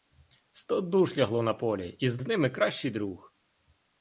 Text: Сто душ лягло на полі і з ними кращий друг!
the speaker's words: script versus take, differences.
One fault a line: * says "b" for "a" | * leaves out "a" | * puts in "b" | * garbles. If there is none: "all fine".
* puts in "з"